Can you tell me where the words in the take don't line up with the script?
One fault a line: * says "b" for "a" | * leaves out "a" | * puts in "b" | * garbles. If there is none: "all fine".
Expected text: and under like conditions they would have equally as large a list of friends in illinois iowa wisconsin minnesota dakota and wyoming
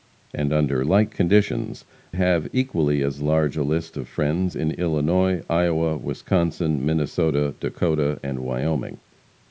* leaves out "they would"